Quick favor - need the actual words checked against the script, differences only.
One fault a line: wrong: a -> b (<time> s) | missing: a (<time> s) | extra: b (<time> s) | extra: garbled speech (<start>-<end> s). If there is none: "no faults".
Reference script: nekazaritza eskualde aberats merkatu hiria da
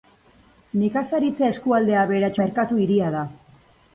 no faults